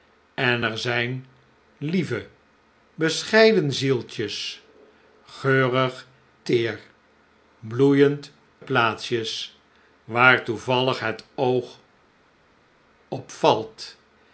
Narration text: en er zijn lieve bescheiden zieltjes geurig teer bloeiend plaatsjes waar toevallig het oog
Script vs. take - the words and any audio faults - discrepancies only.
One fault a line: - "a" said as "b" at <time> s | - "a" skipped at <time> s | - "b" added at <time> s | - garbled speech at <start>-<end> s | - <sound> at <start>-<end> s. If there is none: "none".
none